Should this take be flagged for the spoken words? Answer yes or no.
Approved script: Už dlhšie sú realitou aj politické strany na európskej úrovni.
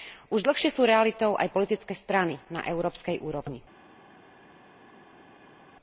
no